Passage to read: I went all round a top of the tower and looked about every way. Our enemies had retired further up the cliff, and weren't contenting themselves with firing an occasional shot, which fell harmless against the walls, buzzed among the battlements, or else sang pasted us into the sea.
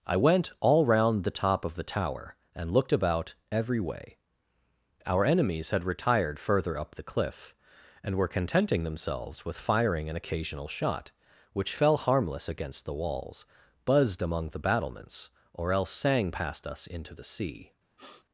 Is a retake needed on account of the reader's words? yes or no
yes